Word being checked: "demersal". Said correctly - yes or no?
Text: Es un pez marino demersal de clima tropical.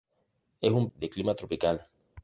no